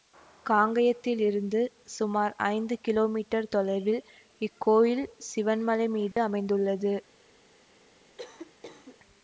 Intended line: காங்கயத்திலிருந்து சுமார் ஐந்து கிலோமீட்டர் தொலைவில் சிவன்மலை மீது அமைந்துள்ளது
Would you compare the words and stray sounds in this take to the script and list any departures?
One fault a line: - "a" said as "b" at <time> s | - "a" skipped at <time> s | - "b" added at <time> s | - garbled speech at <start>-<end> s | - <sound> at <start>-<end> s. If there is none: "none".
- "இக்கோயில்" added at 4.4 s
- dropout at 6.1-6.2 s
- cough at 8.2-9.0 s